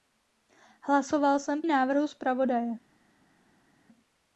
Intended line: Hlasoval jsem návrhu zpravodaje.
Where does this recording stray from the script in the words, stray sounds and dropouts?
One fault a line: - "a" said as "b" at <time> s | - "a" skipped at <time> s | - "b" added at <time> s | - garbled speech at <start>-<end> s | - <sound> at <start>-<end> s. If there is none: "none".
none